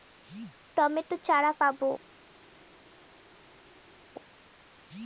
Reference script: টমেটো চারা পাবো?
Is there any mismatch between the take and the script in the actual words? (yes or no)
no